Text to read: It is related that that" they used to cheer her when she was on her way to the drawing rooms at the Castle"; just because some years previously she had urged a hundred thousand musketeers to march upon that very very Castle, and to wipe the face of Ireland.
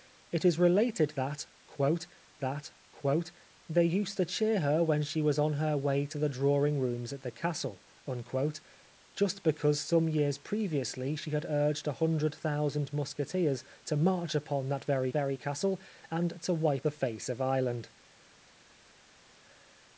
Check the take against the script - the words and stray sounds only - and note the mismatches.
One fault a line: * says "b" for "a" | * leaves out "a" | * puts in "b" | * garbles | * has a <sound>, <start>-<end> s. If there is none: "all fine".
all fine